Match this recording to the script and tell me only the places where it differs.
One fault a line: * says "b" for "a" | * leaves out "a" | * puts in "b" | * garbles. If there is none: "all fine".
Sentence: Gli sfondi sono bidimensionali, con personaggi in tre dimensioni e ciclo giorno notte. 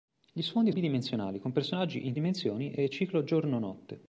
* leaves out "sono"
* leaves out "tre"